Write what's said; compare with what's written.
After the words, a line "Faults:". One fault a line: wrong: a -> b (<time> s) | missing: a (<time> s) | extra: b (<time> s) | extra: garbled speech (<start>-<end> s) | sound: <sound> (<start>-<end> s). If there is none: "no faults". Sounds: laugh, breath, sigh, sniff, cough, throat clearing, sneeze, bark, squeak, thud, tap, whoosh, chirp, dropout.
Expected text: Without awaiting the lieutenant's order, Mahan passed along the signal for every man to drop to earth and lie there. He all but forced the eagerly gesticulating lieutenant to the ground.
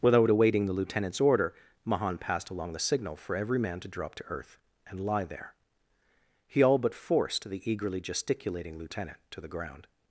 Without awaiting the lieutenant's order, Mahan passed along the signal for every man to drop to earth and lie there. He all but forced the eagerly gesticulating lieutenant to the ground.
Faults:
no faults